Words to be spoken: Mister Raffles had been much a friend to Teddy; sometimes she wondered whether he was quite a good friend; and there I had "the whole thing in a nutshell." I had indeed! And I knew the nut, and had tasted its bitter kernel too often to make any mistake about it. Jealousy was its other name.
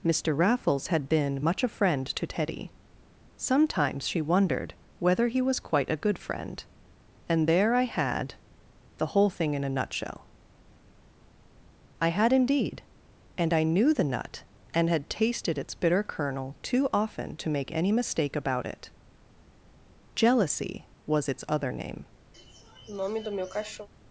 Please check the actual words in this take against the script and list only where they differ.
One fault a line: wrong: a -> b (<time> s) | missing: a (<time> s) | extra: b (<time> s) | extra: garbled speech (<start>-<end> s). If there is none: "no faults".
no faults